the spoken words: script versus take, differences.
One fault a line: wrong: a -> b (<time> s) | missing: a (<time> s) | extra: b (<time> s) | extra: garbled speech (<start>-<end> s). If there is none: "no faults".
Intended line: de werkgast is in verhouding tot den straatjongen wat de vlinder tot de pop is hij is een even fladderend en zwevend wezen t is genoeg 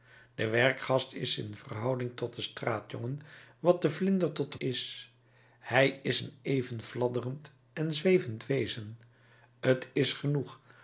missing: pop (4.6 s)